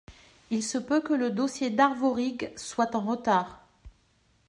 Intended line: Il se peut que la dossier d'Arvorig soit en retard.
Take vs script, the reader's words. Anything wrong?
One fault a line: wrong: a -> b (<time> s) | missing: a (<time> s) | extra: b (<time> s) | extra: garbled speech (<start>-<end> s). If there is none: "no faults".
wrong: la -> le (1.1 s)